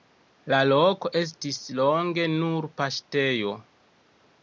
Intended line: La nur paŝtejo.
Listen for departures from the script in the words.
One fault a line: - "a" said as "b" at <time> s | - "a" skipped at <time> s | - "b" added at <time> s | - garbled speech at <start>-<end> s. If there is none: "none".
- "loko estis longe" added at 0.7 s